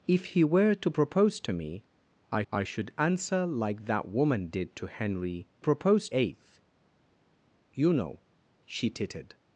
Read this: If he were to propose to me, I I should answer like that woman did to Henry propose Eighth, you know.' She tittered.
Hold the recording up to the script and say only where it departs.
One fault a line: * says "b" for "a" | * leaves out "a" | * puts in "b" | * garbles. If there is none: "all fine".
all fine